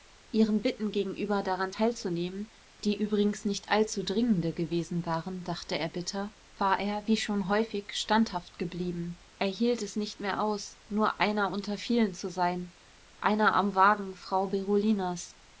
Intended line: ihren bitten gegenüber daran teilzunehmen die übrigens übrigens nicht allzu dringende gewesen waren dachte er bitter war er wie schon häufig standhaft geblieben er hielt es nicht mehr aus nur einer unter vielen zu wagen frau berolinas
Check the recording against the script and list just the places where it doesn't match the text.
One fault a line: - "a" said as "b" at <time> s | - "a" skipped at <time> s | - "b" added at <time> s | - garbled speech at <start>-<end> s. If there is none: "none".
- "übrigens" skipped at 3.4 s
- "sein einer am" added at 12.3 s